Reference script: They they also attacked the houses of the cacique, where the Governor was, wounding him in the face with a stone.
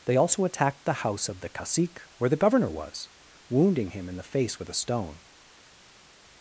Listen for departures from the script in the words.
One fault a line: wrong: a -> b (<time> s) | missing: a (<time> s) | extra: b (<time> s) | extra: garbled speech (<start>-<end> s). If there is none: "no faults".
missing: they (0.2 s)
wrong: houses -> house (0.9 s)